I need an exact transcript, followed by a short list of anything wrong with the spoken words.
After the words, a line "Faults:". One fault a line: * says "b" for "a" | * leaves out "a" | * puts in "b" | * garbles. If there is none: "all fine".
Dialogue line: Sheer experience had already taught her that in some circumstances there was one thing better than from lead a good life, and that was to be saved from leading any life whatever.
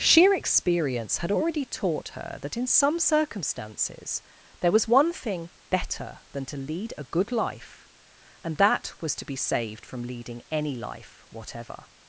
Sheer experience had already taught her that in some circumstances there was one thing better than to lead a good life, and that was to be saved from leading any life whatever.
Faults:
* says "to" for "from"